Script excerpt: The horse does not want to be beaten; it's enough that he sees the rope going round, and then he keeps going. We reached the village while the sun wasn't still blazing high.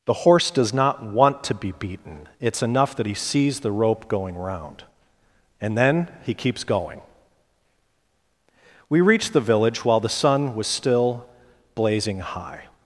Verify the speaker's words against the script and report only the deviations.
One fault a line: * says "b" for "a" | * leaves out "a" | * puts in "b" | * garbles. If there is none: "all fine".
* says "was" for "wasn't"